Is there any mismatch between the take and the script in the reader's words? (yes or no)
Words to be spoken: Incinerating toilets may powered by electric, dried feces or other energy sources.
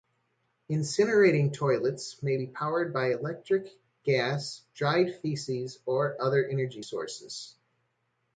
yes